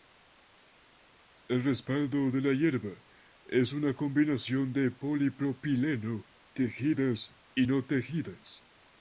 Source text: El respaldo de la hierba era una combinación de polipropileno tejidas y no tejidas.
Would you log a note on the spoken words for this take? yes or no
yes